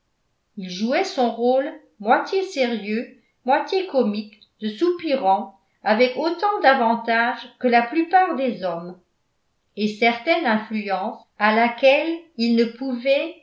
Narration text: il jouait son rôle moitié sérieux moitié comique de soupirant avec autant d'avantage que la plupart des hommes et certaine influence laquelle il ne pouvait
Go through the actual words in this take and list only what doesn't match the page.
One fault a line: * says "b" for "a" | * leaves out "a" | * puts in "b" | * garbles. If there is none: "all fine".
* puts in "à"